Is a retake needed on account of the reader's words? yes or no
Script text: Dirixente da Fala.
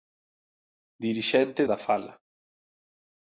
no